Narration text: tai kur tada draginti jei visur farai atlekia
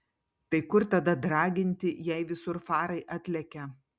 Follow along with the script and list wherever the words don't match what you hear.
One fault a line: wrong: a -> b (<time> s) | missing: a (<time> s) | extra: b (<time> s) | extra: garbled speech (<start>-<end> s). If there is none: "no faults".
no faults